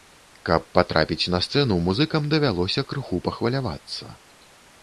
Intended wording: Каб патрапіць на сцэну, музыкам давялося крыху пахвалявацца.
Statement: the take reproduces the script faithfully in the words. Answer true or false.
true